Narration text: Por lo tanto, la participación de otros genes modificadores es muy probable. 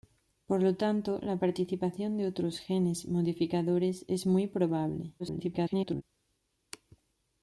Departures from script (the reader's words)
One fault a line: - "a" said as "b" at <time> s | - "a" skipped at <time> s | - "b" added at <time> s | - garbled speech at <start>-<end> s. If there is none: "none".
- garbled speech at 5.2-6.0 s